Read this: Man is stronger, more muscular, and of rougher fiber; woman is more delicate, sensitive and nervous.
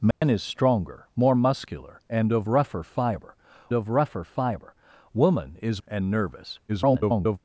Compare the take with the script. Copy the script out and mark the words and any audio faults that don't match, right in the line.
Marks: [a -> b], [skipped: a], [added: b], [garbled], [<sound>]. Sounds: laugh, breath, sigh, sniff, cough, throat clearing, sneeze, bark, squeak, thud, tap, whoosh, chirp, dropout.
Man [dropout] is stronger, more muscular, and of rougher fiber; [woman is more delicate, sensitive -> of rougher fiber woman is] and nervous. [garbled]